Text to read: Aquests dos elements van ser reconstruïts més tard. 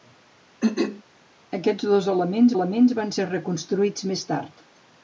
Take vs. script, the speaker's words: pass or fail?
fail